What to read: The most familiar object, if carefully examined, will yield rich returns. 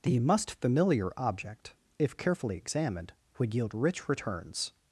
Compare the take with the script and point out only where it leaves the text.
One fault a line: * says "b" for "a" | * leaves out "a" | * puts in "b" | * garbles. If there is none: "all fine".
* says "must" for "most"
* says "would" for "will"